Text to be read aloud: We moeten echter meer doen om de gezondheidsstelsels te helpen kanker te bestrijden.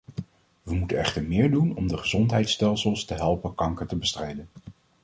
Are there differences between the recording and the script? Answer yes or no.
no